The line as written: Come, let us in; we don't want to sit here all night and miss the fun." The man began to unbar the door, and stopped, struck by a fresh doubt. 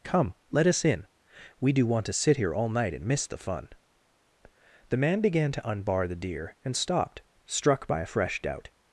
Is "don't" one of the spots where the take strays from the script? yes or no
yes